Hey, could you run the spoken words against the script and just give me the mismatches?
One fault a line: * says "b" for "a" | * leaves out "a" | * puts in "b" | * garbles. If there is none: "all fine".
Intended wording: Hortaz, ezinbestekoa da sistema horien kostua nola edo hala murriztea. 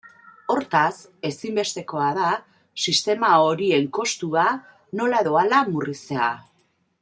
all fine